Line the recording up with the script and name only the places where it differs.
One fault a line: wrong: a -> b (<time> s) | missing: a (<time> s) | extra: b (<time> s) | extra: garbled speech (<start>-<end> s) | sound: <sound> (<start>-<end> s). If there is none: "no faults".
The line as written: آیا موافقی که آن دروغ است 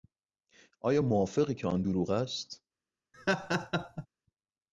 sound: laugh (3.1-4.1 s)